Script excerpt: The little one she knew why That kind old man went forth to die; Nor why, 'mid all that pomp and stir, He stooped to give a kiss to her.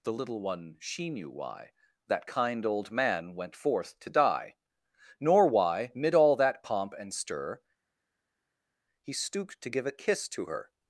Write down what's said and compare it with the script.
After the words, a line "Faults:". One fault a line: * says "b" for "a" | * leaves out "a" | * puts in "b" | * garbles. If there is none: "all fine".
The little one she knew why That kind old man went forth to die; Nor why, 'mid all that pomp and stir, He stooped to give a kiss to her.
Faults:
all fine